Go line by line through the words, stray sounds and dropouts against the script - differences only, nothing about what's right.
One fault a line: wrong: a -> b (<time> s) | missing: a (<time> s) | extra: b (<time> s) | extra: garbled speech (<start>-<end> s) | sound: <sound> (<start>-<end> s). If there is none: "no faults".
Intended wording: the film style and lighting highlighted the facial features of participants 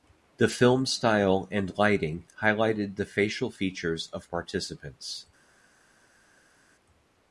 no faults